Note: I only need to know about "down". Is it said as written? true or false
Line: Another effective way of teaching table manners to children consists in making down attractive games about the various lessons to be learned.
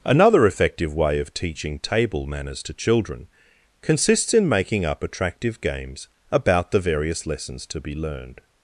false